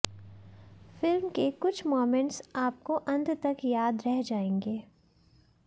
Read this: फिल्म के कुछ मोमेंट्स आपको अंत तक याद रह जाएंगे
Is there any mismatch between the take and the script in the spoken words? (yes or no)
no